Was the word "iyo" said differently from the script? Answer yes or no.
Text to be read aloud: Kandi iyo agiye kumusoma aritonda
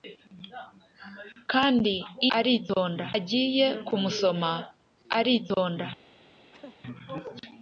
yes